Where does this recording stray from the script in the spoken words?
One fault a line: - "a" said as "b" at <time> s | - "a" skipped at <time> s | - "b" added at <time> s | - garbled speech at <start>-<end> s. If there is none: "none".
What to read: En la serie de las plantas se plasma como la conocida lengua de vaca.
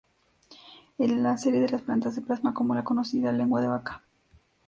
none